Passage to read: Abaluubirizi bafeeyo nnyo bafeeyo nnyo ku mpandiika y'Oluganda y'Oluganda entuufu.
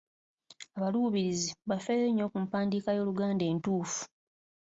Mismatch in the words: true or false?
true